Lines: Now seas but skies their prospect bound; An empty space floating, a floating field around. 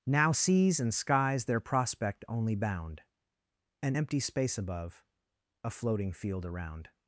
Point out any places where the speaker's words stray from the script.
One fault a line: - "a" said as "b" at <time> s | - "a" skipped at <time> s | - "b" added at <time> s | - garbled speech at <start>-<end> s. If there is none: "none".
- "but" said as "and" at 0.8 s
- "only" added at 2.3 s
- "floating" said as "above" at 4.6 s